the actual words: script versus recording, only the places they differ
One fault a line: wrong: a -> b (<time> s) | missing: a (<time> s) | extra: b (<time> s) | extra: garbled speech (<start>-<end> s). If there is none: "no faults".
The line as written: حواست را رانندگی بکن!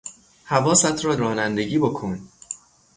no faults